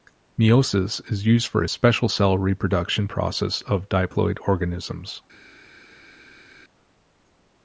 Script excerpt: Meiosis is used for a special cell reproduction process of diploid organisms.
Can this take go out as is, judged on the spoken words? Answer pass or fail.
pass